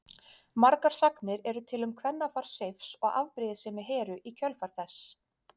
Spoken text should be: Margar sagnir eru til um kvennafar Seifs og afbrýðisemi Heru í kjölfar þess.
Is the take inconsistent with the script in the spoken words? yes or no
no